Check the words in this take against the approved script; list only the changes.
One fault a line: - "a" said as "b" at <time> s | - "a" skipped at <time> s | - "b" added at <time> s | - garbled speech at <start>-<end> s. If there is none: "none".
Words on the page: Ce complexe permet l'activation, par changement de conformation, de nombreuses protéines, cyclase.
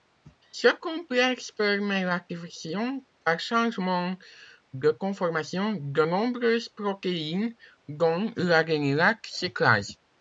- "dont l'adénylate" added at 7.9 s